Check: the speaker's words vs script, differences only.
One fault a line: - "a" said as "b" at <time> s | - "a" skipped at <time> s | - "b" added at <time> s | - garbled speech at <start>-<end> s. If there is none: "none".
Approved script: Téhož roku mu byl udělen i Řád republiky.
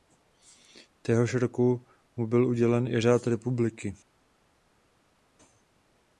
none